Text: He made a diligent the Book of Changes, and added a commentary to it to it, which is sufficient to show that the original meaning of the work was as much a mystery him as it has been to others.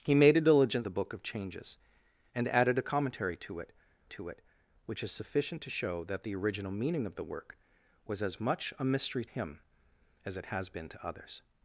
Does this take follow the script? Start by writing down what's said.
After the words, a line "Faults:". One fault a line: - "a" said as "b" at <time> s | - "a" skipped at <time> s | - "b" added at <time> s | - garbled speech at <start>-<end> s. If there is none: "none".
He made a diligent the Book of Changes, and added a commentary to it to it, which is sufficient to show that the original meaning of the work was as much a mystery him as it has been to others.
Faults:
none